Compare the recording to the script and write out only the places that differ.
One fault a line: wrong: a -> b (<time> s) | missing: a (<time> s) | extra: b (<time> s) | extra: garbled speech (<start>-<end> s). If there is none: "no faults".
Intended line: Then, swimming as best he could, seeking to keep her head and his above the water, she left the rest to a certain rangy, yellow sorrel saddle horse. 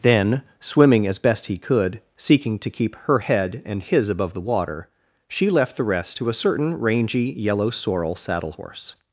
no faults